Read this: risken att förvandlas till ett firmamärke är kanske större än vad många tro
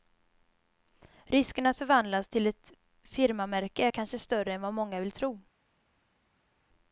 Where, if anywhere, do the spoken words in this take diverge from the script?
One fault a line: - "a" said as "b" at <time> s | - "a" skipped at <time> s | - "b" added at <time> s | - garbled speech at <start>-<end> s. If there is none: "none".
- "vill" added at 5.0 s